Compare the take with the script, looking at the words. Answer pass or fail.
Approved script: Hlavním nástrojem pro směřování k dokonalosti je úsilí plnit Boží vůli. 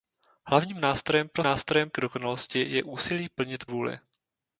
fail